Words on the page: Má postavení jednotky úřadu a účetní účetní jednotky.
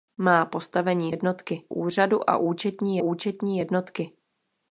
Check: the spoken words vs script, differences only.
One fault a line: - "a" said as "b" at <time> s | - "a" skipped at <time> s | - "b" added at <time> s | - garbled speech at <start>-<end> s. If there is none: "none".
none